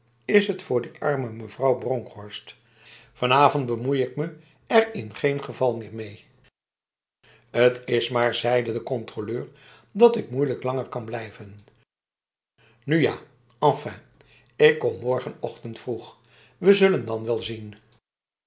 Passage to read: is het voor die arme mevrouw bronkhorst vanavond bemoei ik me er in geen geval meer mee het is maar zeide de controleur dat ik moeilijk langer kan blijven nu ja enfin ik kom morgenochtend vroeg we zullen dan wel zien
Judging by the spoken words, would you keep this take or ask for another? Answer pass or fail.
pass